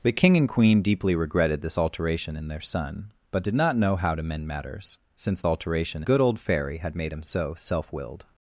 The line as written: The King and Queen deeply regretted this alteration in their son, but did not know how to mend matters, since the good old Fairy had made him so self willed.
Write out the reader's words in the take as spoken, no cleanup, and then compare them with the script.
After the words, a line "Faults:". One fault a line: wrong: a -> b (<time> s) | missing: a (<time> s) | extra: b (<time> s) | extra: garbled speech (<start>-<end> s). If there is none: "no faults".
The King and Queen deeply regretted this alteration in their son, but did not know how to mend matters, since alteration good old Fairy had made him so self willed.
Faults:
wrong: the -> alteration (5.4 s)